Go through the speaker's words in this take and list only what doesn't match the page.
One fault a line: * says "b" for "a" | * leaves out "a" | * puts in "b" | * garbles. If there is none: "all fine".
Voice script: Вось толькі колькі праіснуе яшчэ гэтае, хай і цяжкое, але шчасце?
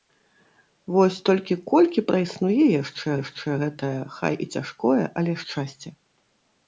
* puts in "яшчэ"